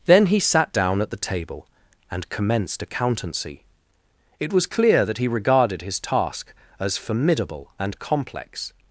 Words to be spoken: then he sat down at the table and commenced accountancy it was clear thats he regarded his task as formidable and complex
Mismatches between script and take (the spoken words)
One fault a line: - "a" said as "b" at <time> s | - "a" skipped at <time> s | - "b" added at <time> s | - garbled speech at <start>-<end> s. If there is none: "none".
- "thats" said as "that" at 5.0 s